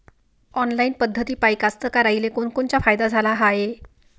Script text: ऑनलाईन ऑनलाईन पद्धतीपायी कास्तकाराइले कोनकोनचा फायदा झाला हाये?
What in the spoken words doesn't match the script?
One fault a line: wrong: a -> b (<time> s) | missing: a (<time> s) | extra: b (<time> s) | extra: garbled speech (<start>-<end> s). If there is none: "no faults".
missing: ऑनलाईन (0.9 s)